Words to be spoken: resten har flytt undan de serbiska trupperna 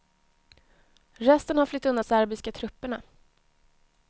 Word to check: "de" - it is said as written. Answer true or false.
false